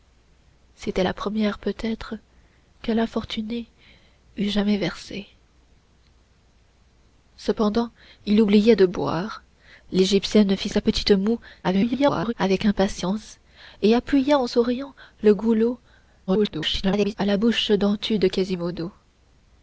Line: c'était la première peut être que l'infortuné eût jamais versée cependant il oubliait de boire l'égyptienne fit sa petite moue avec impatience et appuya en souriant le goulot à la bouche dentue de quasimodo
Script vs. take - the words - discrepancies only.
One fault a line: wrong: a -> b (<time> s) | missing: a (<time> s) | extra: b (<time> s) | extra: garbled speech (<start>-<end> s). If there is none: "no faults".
extra: garbled speech (11.6-12.3 s)
extra: garbled speech (16.3-17.2 s)